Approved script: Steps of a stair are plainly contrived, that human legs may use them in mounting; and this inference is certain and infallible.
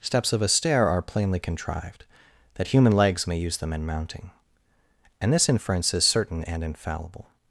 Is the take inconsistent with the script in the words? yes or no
no